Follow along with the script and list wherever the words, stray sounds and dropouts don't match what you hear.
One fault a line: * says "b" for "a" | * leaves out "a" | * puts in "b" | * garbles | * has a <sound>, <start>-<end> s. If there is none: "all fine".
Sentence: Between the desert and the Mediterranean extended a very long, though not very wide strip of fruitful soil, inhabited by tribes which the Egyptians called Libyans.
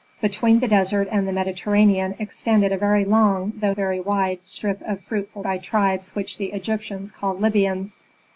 * leaves out "not"
* leaves out "soil inhabited"